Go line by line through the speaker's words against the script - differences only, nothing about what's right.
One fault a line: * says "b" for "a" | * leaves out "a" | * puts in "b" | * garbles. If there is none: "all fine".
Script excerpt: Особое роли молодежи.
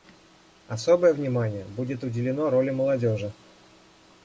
* puts in "внимание будет уделено"